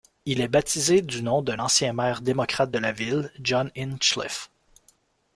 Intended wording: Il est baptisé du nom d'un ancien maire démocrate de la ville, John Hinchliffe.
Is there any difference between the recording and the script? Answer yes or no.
no